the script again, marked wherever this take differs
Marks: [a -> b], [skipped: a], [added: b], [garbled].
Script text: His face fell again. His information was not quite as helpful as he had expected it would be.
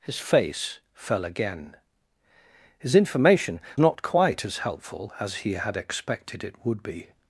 His face fell again. His information [skipped: was] not quite as helpful as he had expected it would be.